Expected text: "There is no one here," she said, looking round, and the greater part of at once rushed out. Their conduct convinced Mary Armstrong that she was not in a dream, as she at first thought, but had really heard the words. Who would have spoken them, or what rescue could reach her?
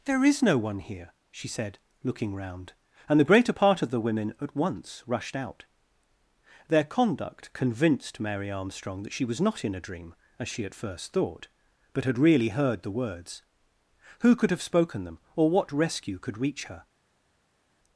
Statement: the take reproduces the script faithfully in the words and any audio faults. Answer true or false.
false